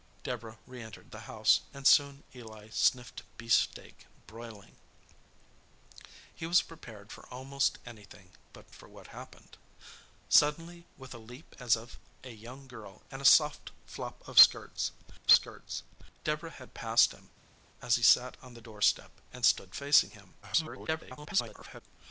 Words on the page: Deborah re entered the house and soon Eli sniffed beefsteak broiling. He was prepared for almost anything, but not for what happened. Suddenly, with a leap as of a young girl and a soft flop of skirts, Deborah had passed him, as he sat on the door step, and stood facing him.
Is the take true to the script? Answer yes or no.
no